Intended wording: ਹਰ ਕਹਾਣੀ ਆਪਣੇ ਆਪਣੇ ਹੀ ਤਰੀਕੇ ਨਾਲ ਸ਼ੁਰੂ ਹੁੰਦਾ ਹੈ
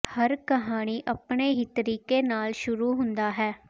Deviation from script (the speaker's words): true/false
true